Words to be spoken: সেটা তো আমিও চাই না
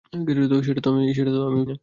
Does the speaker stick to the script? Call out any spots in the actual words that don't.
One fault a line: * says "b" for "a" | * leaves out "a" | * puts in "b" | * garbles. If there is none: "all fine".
* leaves out "চাই"